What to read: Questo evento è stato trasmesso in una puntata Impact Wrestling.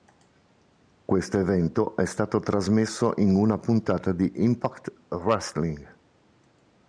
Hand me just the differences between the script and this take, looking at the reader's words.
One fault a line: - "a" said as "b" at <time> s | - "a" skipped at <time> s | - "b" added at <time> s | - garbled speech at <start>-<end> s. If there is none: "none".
- "di" added at 4.1 s